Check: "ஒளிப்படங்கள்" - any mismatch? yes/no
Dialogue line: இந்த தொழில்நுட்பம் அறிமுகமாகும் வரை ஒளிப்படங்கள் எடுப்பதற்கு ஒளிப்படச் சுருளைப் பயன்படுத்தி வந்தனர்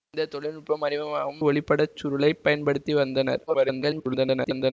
yes